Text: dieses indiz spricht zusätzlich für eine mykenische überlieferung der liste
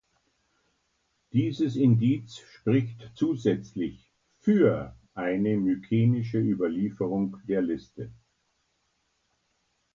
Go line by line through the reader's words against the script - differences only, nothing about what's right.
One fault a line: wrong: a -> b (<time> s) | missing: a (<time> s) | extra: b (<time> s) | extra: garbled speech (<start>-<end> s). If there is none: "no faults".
no faults